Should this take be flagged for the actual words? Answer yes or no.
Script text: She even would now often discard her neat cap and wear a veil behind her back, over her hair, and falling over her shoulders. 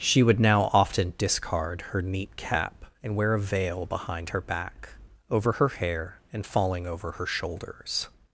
yes